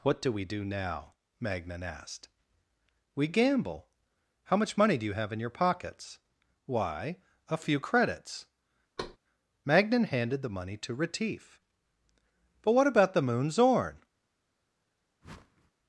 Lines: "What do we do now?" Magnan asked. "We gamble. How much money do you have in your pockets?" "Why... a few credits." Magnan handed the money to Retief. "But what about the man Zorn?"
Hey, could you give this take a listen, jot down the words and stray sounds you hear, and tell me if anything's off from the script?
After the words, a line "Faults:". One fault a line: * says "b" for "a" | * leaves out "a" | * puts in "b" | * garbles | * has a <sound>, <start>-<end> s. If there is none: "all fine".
"What do we do now?" Magnan asked. "We gamble. How much money do you have in your pockets?" "Why... a few credits." Magnan handed the money to Retief. "But what about the moon Zorn?"
Faults:
* has a thud, 9.0-9.2 s
* says "moon" for "man"
* has a whoosh, 15.2-15.7 s